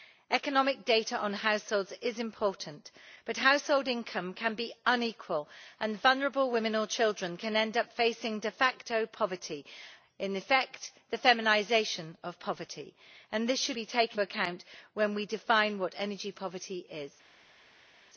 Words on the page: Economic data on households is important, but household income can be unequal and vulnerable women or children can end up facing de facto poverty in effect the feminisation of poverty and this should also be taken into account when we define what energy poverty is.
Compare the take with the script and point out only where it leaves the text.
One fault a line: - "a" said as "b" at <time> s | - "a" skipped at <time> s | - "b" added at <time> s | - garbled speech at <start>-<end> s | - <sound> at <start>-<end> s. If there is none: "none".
- "also" skipped at 13.8 s
- "into" skipped at 14.2 s